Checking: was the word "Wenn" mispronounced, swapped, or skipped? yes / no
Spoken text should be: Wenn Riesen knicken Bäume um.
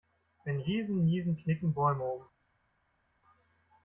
no